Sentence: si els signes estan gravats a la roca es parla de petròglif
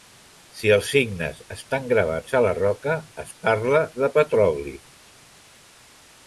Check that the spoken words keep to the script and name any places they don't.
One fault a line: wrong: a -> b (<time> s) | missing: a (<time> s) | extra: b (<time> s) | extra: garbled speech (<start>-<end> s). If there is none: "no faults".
no faults